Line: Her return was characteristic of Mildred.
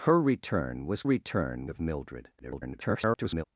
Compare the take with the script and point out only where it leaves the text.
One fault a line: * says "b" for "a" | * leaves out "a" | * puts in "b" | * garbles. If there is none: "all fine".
* says "return" for "characteristic"
* garbles